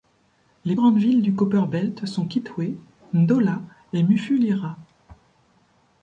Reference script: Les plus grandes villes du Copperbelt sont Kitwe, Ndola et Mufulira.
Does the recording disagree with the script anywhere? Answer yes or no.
yes